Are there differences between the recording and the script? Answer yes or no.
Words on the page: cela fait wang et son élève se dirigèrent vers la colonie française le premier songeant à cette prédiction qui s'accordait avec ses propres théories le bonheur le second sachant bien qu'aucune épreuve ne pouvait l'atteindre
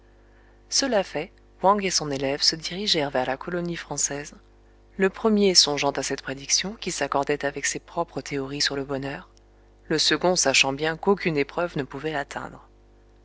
yes